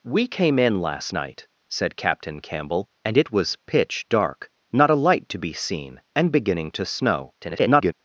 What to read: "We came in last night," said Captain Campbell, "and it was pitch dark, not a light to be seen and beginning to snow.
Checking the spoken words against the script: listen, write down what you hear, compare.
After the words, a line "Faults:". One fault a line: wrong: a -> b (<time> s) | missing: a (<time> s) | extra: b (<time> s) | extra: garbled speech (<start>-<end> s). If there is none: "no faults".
"We came in last night," said Captain Campbell, "and it was pitch dark, not a light to be seen and beginning to snow. [garbled]
Faults:
extra: garbled speech (7.4-7.9 s)